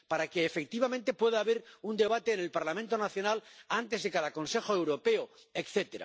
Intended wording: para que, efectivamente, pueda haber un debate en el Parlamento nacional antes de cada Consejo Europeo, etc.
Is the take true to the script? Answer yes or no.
yes